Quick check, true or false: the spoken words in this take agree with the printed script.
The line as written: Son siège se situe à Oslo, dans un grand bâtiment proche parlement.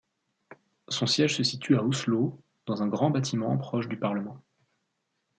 false